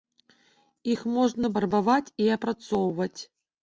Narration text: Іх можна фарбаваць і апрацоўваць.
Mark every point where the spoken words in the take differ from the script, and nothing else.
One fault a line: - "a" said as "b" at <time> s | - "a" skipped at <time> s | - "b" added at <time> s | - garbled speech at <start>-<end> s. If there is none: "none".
none